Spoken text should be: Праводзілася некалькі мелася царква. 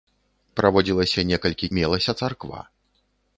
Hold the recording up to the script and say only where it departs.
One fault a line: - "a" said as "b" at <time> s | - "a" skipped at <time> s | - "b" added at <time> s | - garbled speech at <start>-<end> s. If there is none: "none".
none